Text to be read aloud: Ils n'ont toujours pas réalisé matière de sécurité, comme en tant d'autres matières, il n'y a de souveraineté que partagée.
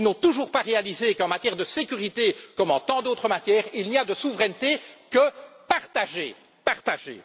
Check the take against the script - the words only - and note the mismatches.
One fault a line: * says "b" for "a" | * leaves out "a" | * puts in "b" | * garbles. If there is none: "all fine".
* puts in "qu'en"